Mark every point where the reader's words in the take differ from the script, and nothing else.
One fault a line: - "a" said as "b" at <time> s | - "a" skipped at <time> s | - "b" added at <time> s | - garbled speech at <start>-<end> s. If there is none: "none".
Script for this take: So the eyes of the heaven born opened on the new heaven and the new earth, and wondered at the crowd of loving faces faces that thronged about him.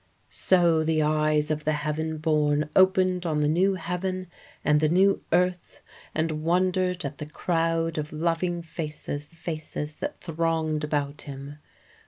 none